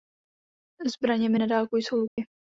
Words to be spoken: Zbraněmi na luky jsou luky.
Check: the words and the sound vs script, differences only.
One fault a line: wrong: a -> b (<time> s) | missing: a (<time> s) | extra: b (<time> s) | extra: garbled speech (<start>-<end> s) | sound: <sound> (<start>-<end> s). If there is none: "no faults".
wrong: luky -> dálku (1.5 s)
sound: dropout (2.1-2.2 s)